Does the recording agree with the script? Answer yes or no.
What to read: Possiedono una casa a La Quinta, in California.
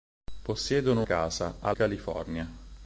no